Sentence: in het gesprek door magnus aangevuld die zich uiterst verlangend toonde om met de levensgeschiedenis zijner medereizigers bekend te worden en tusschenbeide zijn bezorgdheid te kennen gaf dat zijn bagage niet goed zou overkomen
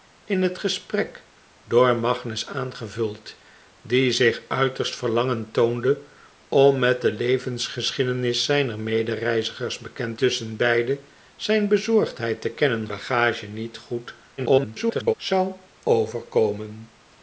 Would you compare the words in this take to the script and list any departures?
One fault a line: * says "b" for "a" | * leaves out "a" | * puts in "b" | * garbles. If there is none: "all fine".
* leaves out "te worden en"
* leaves out "gaf dat zijn"
* garbles